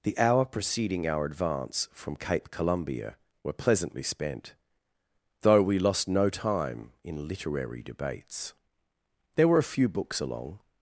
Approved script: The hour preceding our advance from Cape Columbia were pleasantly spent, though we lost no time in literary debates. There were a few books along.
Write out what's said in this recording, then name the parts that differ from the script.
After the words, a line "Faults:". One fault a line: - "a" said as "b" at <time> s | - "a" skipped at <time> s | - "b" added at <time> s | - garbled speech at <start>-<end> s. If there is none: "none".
The hour preceding our advance from Cape Columbia were pleasantly spent, though we lost no time in literary debates. There were a few books along.
Faults:
none